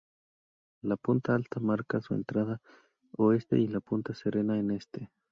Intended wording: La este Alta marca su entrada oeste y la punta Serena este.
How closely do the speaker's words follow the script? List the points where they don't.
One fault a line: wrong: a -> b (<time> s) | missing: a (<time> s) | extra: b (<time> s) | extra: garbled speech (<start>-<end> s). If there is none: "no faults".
wrong: este -> punta (1.0 s)
extra: en (4.6 s)